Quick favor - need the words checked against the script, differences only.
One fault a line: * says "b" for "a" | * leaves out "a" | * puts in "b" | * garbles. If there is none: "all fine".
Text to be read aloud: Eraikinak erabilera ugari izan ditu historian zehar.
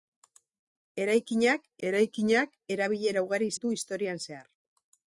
* puts in "eraikinak"
* leaves out "izan"